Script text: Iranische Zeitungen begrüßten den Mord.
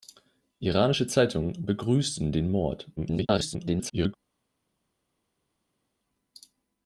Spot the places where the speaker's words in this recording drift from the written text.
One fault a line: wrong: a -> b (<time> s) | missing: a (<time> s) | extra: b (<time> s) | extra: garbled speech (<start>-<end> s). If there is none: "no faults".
extra: garbled speech (3.0-4.1 s)